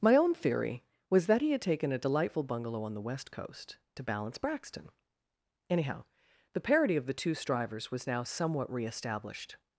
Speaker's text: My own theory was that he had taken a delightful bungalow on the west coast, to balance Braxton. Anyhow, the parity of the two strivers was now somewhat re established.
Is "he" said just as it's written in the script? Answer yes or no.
yes